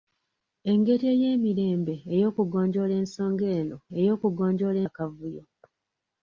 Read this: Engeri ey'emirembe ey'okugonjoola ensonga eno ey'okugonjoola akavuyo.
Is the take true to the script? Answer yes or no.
yes